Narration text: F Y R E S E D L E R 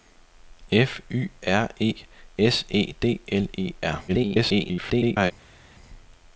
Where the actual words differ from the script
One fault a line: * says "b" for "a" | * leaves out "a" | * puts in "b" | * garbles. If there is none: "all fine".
* garbles